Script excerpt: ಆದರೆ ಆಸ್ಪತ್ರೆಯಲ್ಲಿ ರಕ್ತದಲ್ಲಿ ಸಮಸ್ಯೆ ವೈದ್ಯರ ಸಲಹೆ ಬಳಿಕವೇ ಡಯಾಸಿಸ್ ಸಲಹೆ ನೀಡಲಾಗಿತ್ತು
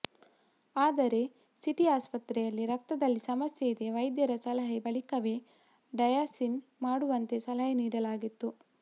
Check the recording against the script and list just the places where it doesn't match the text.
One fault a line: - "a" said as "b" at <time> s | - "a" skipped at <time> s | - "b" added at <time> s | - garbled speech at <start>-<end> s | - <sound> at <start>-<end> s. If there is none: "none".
- "ಸಿಟಿ" added at 1.6 s
- "ಇದೆ" added at 3.7 s
- "ಮಾಡುವಂತೆ" added at 6.8 s